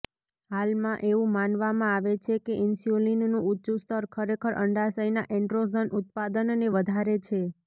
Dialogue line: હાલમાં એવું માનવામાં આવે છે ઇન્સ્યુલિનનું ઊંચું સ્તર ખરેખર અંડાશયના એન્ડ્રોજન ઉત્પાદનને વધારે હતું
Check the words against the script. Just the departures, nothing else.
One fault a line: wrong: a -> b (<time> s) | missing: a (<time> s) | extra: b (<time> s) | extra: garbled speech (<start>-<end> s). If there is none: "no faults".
extra: કે (2.4 s)
wrong: હતું -> છે (7.2 s)